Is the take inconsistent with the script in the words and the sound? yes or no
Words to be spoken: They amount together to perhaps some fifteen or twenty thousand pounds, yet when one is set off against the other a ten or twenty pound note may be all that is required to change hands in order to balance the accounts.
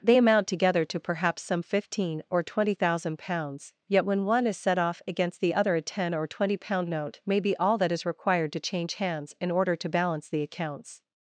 no